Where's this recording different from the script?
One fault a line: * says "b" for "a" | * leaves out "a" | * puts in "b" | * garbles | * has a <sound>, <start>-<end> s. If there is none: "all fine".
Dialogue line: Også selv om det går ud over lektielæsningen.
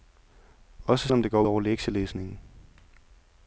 * leaves out "selv"
* leaves out "ud"